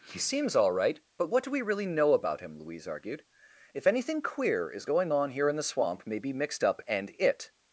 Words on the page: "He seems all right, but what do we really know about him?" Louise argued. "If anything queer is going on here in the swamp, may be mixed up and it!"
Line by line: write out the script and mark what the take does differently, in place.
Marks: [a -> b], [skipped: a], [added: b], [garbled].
"He seems all right, but what do we really know about him?" Louise argued. "If anything queer is going on here in the swamp, may be mixed up and it!"